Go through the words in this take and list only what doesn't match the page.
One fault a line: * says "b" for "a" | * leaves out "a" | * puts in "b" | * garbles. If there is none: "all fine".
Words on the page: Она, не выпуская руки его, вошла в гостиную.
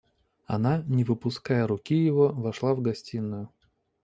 all fine